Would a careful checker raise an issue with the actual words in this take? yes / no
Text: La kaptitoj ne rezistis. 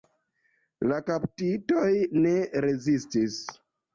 no